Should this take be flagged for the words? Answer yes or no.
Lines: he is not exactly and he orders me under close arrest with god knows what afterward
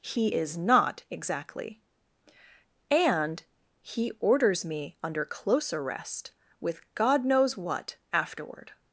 no